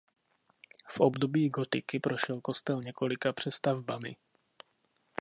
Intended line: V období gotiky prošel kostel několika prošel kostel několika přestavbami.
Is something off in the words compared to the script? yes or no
yes